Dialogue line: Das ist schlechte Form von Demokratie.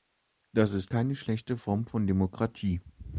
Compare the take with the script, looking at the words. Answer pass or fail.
fail